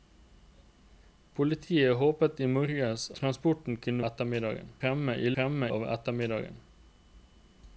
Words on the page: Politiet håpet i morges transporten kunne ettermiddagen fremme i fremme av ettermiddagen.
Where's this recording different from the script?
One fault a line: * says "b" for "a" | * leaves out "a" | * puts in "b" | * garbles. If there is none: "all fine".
all fine